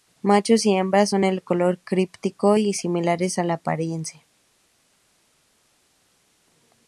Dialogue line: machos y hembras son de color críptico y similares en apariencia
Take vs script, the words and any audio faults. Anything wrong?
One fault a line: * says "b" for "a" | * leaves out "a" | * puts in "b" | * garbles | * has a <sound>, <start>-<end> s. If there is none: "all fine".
all fine